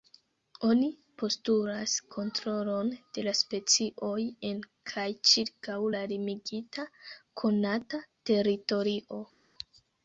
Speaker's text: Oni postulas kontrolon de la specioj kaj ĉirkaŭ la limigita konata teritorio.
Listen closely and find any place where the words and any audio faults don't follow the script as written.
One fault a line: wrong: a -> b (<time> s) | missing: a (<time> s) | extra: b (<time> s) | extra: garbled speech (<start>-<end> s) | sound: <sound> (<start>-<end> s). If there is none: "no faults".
extra: en (4.5 s)